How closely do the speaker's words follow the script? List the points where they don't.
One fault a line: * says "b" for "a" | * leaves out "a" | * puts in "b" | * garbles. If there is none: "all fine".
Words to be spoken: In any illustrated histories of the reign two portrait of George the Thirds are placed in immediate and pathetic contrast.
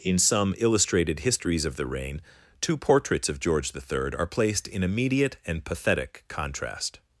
* says "some" for "any"
* says "portraits" for "portrait"
* says "Third" for "Thirds"